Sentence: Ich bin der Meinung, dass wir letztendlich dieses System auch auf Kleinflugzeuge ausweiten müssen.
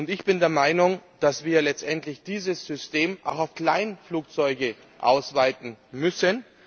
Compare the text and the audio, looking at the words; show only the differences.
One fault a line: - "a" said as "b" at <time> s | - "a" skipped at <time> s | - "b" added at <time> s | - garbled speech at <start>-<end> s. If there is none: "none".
none